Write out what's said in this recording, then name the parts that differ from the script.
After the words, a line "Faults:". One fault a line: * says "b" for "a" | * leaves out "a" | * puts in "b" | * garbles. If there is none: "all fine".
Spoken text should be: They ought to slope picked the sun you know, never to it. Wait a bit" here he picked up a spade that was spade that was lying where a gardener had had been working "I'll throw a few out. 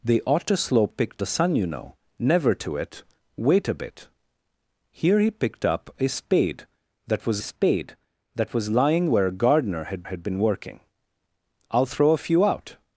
They ought to slope picked the sun you know, never to it. Wait a bit" here he picked up a spade that was spade that was lying where a gardener had had been working "I'll throw a few out.
Faults:
all fine